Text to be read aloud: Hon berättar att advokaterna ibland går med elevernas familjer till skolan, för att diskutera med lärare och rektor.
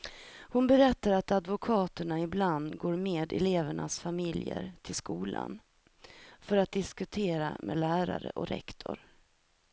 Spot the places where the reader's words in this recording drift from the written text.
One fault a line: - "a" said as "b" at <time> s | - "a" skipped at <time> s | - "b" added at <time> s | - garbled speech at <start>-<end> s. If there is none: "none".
none